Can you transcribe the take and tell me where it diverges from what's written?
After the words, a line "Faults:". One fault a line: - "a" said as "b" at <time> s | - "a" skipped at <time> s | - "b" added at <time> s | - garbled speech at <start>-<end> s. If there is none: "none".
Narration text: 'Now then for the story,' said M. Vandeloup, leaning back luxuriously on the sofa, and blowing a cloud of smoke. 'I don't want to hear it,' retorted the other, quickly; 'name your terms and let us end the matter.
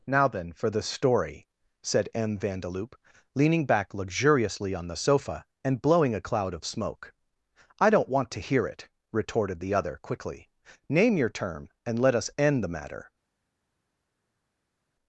'Now then for the story,' said M. Vandeloup, leaning back luxuriously on the sofa, and blowing a cloud of smoke. 'I don't want to hear it,' retorted the other, quickly; 'name your term and let us end the matter.
Faults:
- "terms" said as "term" at 11.3 s